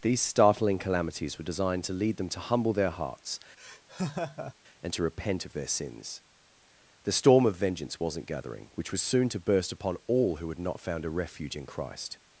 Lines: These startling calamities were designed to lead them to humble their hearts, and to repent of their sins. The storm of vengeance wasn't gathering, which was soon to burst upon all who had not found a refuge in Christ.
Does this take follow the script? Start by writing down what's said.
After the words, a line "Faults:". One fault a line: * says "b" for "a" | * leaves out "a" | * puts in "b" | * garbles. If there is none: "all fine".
These startling calamities were designed to lead them to humble their hearts, and to repent of their sins. The storm of vengeance wasn't gathering, which was soon to burst upon all who had not found a refuge in Christ.
Faults:
all fine